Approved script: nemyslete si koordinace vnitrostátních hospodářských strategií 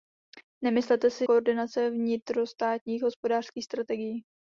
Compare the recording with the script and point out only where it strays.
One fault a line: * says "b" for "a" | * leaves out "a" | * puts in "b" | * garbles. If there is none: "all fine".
all fine